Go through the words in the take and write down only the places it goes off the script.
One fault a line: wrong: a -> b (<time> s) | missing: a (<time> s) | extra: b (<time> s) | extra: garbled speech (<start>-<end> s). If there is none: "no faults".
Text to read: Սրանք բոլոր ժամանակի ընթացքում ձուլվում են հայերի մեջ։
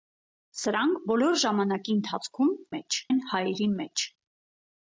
wrong: ձուլվում -> մեջ (2.8 s)